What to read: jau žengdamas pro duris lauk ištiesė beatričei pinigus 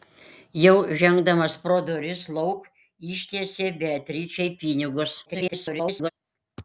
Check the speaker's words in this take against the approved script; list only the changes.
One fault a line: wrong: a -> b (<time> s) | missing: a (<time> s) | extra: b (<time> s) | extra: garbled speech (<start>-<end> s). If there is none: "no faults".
extra: garbled speech (5.3-6.1 s)